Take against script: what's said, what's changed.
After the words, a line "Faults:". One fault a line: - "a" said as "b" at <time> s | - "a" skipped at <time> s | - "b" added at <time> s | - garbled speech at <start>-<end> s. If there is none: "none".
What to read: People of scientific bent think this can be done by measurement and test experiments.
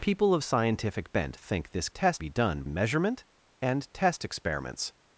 People of scientific bent think this test be done measurement and test experiments.
Faults:
- "can" said as "test" at 1.9 s
- "by" skipped at 2.6 s